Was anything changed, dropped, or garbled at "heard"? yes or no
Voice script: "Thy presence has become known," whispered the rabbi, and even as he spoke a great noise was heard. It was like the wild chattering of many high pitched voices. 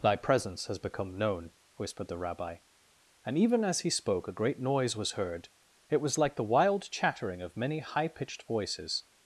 no